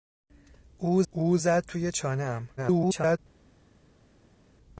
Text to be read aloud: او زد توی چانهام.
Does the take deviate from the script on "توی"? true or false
false